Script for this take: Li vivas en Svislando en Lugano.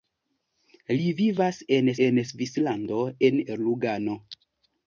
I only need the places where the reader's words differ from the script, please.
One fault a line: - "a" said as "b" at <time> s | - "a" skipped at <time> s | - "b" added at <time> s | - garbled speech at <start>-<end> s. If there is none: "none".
- "en" added at 2.1 s